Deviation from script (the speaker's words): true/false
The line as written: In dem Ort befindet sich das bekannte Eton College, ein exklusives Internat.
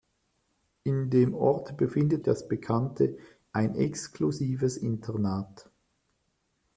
true